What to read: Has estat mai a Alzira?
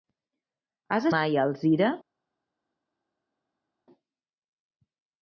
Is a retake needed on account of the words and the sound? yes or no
yes